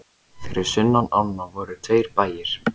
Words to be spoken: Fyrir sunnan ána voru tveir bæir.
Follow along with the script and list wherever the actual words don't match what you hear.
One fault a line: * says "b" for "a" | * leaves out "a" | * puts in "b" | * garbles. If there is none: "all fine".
all fine